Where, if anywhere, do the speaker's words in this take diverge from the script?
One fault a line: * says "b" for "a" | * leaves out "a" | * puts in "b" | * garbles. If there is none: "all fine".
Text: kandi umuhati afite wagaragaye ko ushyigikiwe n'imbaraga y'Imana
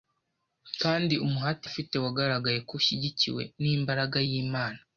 all fine